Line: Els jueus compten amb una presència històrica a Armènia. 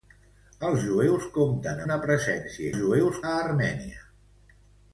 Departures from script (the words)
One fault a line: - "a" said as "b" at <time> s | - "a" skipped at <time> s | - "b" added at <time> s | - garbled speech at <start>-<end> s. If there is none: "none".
- "amb" skipped at 1.8 s
- "històrica" said as "jueus" at 2.8 s